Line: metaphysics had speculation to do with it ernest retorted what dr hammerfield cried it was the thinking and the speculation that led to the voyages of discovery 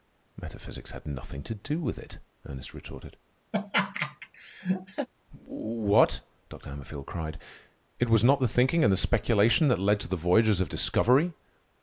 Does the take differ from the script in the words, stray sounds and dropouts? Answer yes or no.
yes